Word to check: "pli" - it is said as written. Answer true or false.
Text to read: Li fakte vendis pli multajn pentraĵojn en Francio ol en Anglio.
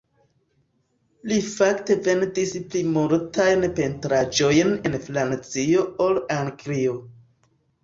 true